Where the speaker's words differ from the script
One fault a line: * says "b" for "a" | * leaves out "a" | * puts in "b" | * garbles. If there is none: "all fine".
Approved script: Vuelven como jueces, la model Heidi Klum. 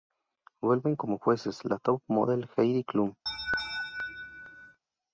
* puts in "top"